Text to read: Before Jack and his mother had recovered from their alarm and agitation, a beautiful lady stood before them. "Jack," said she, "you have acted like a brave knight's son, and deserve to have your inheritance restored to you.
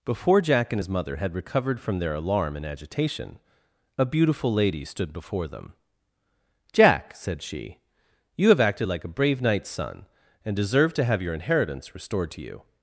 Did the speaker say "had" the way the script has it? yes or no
yes